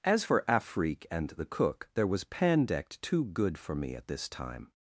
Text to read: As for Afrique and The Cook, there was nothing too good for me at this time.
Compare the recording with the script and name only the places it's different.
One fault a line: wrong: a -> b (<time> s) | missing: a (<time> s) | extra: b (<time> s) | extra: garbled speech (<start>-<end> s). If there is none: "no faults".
wrong: nothing -> pandect (2.2 s)